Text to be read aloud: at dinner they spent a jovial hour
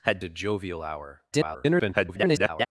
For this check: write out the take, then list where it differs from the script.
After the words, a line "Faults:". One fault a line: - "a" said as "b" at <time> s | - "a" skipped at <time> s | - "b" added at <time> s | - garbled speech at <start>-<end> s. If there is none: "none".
at a jovial hour [garbled]
Faults:
- "dinner they spent" skipped at 0.2 s
- garbled speech at 1.3-2.7 s